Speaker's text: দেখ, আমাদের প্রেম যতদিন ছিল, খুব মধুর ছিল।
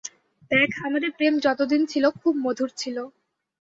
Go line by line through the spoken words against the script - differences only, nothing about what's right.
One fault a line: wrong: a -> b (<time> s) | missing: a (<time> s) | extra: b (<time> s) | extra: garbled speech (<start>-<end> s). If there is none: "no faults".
no faults